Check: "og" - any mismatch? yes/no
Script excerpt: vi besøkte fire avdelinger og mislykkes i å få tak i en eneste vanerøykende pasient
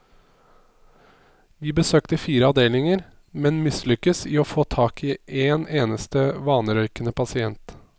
yes